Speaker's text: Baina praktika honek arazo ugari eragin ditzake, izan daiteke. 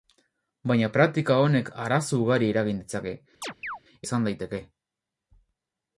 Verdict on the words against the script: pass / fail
pass